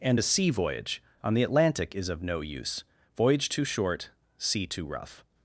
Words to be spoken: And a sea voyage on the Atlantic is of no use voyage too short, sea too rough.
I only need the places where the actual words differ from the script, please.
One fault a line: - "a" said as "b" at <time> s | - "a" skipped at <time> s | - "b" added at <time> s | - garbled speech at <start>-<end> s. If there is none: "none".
none